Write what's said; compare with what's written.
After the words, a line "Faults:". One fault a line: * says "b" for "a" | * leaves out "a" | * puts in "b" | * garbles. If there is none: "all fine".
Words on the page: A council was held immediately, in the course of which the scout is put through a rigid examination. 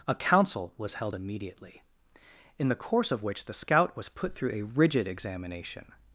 A council was held immediately, in the course of which the scout was put through a rigid examination.
Faults:
* says "was" for "is"